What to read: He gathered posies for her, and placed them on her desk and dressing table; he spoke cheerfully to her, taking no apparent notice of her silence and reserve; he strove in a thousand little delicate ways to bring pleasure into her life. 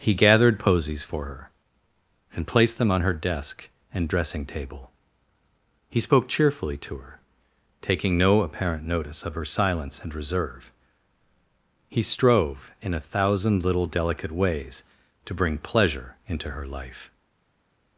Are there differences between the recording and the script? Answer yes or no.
no